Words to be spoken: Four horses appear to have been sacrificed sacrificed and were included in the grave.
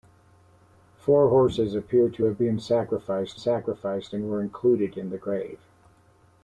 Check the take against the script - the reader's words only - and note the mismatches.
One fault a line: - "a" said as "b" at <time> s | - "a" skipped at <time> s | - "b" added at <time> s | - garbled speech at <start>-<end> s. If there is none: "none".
none